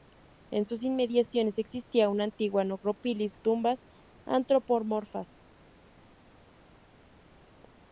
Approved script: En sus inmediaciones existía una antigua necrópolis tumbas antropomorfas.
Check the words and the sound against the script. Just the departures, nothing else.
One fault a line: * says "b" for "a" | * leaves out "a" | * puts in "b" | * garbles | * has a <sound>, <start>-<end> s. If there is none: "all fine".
all fine